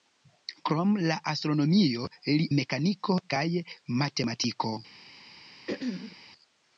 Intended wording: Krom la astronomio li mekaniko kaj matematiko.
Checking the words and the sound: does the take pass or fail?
fail